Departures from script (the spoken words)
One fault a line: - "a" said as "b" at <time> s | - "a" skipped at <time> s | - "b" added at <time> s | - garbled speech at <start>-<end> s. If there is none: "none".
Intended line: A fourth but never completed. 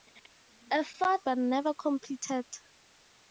none